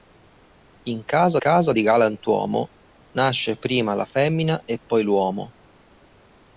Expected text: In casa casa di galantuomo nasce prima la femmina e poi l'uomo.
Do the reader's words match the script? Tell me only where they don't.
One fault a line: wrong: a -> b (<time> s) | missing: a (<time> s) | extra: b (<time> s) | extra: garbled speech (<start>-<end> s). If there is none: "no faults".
no faults